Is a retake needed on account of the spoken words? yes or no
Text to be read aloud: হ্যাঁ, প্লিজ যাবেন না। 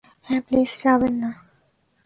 no